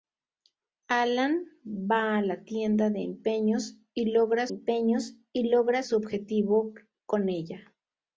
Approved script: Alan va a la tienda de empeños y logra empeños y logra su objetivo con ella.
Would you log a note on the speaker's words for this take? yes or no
no